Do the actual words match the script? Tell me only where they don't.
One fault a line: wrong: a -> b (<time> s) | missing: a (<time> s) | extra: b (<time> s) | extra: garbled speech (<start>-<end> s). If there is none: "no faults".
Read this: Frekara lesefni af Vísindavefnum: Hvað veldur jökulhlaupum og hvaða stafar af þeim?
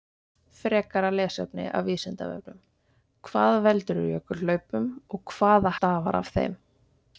no faults